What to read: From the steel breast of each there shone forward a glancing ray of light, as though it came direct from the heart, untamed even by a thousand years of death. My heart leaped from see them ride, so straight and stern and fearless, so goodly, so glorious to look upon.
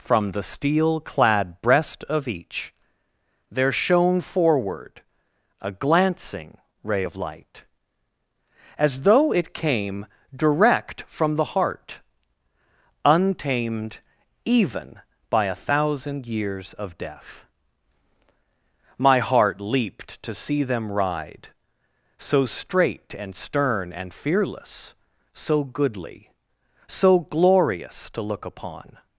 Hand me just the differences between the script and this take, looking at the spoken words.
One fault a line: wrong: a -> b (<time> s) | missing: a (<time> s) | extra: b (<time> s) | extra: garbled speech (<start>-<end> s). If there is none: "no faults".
extra: clad (1.0 s)
wrong: from -> to (20.2 s)